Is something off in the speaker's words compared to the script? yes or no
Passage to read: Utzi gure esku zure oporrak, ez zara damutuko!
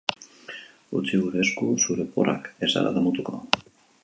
no